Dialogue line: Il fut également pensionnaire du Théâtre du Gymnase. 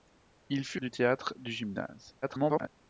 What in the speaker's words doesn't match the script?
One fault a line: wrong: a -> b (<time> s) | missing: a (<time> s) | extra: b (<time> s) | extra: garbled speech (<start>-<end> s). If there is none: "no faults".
missing: également pensionnaire (0.8 s)
extra: garbled speech (2.2-2.7 s)